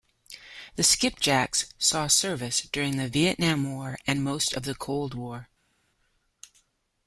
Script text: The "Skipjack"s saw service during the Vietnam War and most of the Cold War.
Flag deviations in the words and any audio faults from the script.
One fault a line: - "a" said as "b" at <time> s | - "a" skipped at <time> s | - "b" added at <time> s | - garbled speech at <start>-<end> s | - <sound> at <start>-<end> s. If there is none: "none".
none